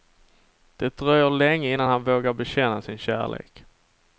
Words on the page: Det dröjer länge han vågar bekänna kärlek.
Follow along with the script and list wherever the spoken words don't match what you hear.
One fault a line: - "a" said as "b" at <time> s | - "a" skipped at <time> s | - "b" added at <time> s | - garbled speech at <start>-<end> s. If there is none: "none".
- "innan" added at 1.7 s
- "sin" added at 2.8 s